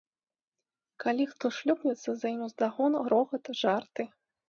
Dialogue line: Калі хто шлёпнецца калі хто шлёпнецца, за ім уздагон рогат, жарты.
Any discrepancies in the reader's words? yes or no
yes